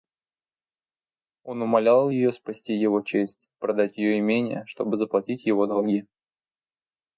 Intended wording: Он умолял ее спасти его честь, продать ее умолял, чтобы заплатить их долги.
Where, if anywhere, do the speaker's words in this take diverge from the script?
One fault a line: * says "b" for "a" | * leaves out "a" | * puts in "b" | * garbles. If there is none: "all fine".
* says "имение" for "умолял"
* says "его" for "их"